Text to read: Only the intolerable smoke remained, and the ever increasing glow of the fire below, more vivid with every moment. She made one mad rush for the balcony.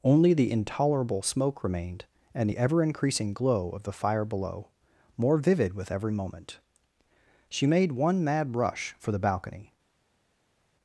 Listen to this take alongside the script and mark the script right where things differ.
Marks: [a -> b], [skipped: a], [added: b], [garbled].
Only the intolerable smoke remained, and the ever increasing glow of the fire below, more vivid with every moment. She made one mad rush for the balcony.